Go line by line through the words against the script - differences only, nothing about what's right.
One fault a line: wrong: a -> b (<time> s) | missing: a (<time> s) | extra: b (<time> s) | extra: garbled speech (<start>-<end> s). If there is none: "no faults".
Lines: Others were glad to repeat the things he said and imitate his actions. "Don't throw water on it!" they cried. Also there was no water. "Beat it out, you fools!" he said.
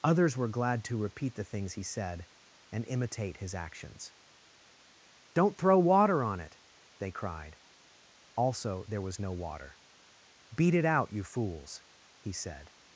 no faults